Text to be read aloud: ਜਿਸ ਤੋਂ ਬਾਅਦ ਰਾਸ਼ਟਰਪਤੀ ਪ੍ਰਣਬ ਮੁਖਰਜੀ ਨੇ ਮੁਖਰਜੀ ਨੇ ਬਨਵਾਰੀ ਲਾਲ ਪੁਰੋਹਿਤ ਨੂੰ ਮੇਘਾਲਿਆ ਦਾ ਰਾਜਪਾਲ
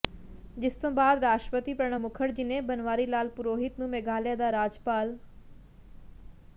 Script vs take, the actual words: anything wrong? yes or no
yes